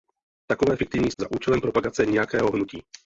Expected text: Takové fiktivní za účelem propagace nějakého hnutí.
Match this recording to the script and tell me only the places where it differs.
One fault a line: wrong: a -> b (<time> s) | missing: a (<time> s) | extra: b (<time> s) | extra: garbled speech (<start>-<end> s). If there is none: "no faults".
no faults